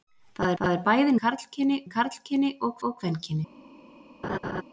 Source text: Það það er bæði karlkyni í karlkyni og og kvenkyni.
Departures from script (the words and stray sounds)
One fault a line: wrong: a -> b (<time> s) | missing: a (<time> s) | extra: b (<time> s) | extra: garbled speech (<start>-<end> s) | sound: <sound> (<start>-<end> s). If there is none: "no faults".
sound: laugh (4.2-4.6 s)